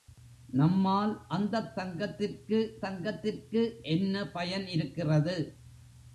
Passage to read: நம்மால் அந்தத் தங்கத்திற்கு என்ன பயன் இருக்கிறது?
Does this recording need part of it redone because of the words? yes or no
yes